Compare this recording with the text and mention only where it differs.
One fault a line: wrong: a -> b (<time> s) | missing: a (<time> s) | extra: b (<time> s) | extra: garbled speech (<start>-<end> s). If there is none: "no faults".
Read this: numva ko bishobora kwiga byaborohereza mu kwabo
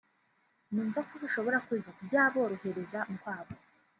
no faults